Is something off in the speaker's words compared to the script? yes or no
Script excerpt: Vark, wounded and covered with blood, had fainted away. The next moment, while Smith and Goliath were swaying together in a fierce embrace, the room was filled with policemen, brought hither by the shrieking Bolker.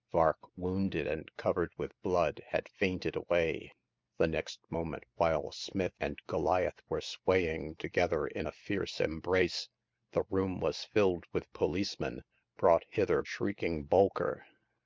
yes